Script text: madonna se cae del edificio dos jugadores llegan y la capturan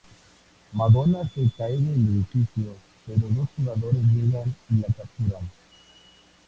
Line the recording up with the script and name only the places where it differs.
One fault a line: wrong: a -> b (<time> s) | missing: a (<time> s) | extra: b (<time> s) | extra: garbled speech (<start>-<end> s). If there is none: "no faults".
extra: pero (3.0 s)